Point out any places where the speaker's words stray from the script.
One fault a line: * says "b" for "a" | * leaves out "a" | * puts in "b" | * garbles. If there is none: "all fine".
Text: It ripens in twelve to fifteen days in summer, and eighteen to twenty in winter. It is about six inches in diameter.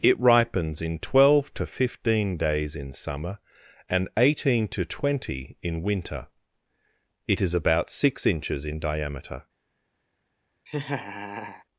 all fine